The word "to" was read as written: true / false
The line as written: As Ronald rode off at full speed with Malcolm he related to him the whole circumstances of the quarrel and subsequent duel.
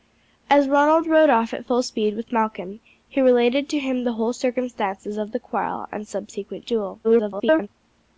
true